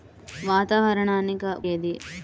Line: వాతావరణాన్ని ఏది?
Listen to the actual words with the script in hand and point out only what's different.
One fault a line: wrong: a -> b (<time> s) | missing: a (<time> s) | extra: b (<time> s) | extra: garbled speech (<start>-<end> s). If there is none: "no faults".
no faults